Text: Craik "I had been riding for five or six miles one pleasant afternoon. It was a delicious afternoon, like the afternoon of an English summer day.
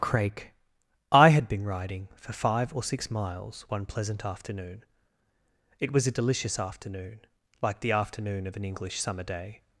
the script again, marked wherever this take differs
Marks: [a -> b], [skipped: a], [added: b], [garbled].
Craik "I had been riding for five or six miles one pleasant afternoon. It was a delicious afternoon, like the afternoon of an English summer day.